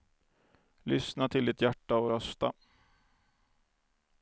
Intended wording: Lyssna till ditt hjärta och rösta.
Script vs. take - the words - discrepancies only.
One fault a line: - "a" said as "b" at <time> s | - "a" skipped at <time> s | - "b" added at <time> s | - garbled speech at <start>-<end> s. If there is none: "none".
none